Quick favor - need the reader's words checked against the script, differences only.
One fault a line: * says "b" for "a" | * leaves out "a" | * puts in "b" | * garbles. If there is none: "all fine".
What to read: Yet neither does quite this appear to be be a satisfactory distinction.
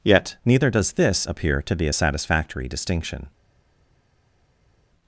* leaves out "quite"
* leaves out "be"